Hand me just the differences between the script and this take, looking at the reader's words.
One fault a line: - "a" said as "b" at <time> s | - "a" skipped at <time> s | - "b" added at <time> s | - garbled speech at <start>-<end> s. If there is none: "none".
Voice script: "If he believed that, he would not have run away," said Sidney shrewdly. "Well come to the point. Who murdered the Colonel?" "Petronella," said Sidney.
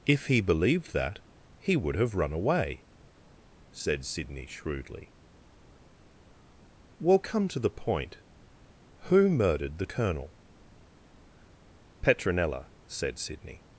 - "not" skipped at 1.9 s